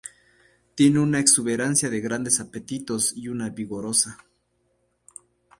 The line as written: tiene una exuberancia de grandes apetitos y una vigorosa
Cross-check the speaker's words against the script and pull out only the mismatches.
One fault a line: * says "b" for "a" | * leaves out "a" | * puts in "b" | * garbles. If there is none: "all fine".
all fine